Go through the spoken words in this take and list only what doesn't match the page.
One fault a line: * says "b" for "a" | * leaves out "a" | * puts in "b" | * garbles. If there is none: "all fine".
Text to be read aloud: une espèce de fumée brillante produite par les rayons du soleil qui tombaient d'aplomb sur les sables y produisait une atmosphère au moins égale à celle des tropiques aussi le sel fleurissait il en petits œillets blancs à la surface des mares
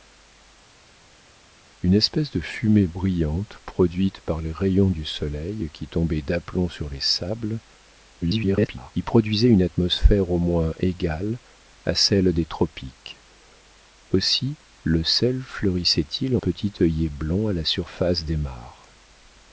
* garbles
* leaves out "en"